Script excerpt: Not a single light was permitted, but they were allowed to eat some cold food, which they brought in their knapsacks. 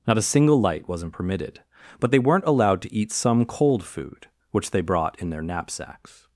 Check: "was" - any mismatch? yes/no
yes